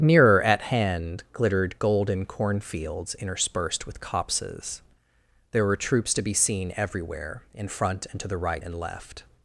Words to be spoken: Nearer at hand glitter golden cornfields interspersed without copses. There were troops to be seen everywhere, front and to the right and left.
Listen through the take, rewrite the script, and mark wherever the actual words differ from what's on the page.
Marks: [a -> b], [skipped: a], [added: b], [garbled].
Nearer at hand [glitter -> glittered] golden cornfields interspersed [without -> with] copses. There were troops to be seen everywhere, [added: in] front and to the right and left.